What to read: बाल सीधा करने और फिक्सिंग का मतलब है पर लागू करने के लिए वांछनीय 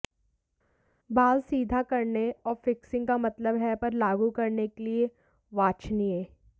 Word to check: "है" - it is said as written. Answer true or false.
true